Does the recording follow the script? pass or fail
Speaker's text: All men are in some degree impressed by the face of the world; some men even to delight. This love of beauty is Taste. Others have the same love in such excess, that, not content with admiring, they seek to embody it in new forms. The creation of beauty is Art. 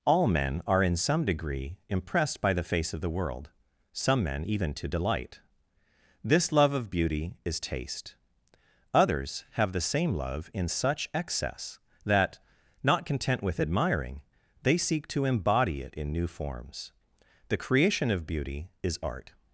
pass